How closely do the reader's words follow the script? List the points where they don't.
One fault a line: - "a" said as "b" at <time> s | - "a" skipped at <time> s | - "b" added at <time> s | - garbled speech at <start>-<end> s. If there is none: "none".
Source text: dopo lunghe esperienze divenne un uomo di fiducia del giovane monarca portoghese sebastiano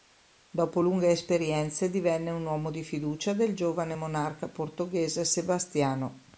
none